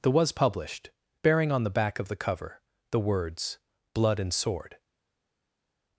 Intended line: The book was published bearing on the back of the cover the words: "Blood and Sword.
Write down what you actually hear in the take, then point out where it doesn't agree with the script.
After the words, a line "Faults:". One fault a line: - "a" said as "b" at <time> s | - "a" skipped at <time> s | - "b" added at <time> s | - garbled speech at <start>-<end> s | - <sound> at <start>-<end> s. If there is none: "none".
The was published bearing on the back of the cover the words: "Blood and Sword.
Faults:
- "book" skipped at 0.1 s